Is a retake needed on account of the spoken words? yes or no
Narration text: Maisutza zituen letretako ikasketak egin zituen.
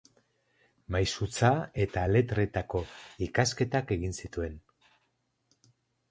yes